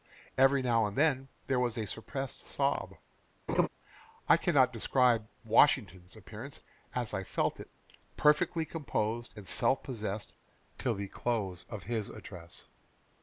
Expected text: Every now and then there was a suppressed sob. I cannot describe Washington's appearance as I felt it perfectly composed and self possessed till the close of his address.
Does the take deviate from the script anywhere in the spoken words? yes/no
no